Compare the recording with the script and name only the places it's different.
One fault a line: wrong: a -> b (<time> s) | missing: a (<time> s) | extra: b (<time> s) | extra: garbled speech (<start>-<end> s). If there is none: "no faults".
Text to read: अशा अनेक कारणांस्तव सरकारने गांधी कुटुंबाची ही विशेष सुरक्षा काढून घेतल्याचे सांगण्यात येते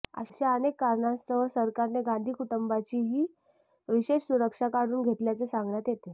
no faults